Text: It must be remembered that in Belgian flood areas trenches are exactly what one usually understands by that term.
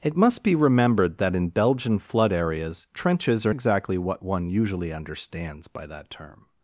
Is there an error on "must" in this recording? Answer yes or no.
no